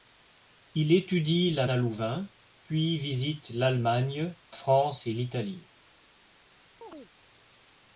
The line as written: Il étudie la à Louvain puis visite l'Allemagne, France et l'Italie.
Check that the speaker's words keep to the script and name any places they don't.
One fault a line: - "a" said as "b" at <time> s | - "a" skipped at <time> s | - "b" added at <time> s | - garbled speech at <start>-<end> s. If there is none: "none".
none